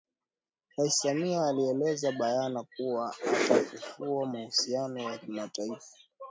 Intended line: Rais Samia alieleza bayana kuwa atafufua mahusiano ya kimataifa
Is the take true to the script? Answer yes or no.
yes